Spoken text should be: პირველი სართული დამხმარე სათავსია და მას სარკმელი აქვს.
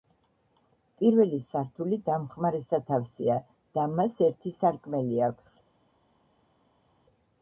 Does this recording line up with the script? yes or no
no